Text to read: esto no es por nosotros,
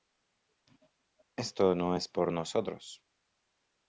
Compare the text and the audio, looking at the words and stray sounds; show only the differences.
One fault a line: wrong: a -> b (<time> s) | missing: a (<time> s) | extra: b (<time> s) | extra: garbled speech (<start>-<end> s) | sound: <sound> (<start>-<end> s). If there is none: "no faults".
no faults